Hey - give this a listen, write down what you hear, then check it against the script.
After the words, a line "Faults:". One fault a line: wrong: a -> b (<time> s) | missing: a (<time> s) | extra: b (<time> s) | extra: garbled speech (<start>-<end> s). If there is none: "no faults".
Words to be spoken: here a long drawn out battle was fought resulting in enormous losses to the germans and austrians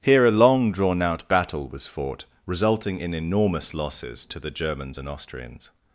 here a long drawn out battle was fought resulting in enormous losses to the germans and austrians
Faults:
no faults